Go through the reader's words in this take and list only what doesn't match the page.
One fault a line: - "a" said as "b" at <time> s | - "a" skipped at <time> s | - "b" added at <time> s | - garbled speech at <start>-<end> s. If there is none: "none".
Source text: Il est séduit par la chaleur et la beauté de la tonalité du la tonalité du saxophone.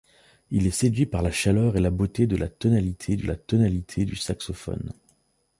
none